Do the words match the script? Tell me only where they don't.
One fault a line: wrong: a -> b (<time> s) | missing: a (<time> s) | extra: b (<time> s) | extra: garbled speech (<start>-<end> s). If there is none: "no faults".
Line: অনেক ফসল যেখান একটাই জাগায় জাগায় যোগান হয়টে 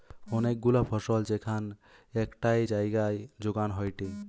extra: গুলা (0.6 s)
missing: জাগায় (3.2 s)